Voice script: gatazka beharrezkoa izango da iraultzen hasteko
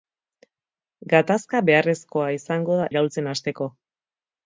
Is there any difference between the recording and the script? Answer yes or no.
no